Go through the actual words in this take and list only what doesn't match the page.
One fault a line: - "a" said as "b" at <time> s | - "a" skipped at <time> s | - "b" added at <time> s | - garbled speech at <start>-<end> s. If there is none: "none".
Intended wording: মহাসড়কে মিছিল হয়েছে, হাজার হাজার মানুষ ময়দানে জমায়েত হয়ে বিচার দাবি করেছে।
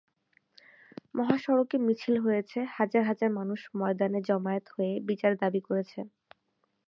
none